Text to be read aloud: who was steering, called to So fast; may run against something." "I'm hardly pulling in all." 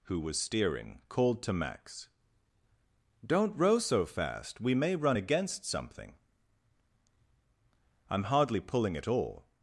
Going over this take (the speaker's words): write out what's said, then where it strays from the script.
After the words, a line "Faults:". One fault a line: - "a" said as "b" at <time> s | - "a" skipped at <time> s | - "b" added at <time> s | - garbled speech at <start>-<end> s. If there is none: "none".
who was steering, called to Max: "Don't row so fast; we may run against something." "I'm hardly pulling at all."
Faults:
- "Max Don't row" added at 1.5 s
- "we" added at 4.6 s
- "in" said as "at" at 8.9 s